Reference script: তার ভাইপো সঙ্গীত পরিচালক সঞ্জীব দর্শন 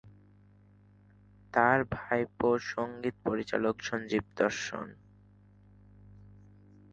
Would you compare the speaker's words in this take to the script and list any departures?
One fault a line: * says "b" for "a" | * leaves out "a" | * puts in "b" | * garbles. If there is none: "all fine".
all fine